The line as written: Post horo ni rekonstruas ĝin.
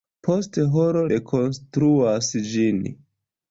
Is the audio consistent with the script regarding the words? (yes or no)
no